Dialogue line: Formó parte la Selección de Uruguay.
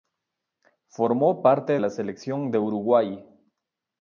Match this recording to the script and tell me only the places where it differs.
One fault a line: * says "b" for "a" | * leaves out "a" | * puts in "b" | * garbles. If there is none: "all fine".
all fine